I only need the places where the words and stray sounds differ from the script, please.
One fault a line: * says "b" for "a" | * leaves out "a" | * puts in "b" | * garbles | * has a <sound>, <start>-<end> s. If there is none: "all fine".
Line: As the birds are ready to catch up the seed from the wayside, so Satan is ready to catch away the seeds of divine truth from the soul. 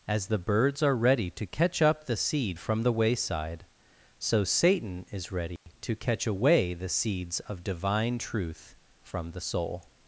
* has a dropout, 5.6-5.7 s